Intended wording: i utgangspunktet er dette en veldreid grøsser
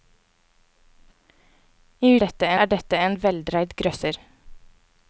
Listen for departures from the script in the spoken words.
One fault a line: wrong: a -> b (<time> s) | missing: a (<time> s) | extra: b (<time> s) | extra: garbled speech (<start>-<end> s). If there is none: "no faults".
wrong: utgangspunktet -> dette (2.2 s)